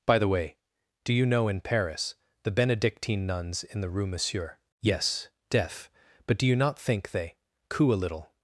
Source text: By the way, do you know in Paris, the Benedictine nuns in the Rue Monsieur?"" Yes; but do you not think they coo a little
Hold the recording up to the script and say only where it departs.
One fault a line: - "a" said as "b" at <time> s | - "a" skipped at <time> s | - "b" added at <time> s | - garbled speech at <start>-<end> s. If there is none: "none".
- "deaf" added at 5.5 s